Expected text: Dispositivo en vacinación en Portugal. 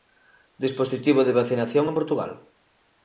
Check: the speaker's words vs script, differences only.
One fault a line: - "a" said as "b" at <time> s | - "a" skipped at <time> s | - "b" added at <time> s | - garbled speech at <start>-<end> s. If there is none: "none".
- "en" said as "de" at 1.2 s